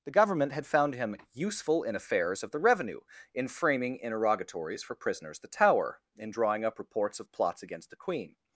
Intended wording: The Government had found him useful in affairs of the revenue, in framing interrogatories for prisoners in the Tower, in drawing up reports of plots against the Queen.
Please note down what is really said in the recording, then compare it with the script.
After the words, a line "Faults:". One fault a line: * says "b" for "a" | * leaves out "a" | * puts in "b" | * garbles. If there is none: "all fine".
The Government had found him useful in affairs of the revenue, in framing interrogatories for prisoners the Tower, in drawing up reports of plots against the Queen.
Faults:
* leaves out "in"